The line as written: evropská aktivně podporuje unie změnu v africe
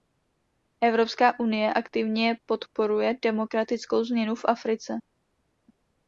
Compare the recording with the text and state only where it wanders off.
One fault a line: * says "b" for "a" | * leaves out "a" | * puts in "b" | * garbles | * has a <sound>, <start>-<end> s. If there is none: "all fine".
* puts in "unie"
* says "demokratickou" for "unie"